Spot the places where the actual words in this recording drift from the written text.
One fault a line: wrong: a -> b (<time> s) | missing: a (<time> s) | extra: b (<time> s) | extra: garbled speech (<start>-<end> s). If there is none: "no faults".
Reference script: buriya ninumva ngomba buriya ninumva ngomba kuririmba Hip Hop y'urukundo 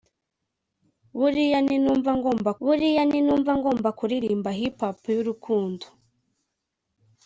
no faults